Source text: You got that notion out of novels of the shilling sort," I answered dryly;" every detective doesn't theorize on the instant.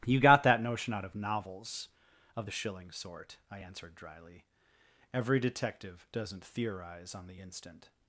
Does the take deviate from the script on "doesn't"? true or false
false